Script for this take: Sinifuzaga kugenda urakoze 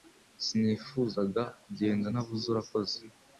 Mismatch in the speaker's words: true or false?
true